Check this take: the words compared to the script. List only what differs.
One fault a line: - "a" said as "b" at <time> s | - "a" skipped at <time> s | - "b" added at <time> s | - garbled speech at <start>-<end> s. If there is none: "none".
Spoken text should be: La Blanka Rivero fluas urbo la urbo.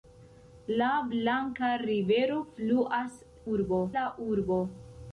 none